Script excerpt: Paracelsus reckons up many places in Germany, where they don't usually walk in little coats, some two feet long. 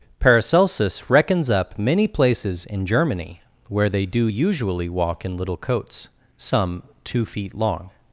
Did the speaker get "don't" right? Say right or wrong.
wrong